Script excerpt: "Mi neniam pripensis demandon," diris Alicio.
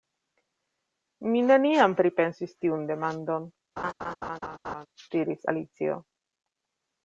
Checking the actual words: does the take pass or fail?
fail